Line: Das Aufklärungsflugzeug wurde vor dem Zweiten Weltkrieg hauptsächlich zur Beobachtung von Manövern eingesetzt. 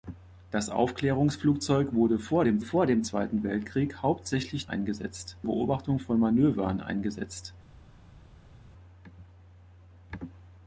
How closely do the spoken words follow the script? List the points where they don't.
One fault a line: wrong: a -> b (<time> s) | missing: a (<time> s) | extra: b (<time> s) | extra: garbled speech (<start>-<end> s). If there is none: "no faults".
extra: vor dem (2.6 s)
wrong: zur -> eingesetzt (4.6 s)